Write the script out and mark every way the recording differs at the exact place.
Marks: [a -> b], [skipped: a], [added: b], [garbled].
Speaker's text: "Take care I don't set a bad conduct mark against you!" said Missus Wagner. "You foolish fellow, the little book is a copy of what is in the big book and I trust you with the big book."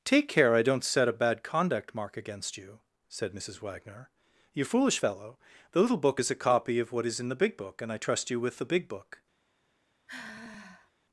"Take care I don't set a bad conduct mark against you!" said Missus Wagner. "You foolish fellow, the little book is a copy of what is in the big book and I trust you with the big book."